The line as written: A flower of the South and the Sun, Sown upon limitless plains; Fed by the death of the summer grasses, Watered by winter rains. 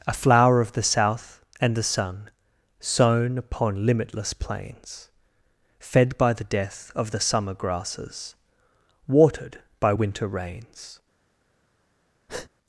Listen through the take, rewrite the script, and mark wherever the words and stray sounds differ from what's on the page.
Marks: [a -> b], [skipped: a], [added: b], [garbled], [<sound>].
A flower of the South and the Sun, Sown upon limitless plains; Fed by the death of the summer grasses, Watered by winter rains. [breath]